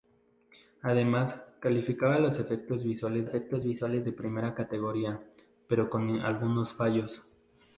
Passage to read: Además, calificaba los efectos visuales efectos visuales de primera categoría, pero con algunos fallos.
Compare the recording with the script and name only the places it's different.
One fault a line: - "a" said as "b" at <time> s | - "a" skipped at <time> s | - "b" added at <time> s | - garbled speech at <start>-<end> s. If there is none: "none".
none